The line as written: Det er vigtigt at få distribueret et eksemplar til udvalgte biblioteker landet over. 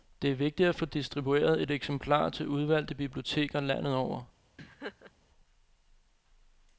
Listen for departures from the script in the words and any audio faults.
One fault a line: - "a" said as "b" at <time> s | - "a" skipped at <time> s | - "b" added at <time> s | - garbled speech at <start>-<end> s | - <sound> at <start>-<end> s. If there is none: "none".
- laugh at 4.6-5.1 s